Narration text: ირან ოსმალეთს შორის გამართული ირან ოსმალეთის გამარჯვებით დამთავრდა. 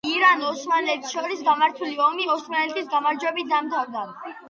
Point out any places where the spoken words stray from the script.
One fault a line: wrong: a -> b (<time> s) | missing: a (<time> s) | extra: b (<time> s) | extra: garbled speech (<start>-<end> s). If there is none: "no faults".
wrong: ირან -> ომი (2.1 s)